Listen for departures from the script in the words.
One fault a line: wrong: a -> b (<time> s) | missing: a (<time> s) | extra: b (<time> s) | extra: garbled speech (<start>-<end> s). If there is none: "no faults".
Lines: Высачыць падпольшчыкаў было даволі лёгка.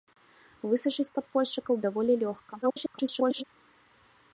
missing: было (1.8 s)
extra: garbled speech (2.6-3.4 s)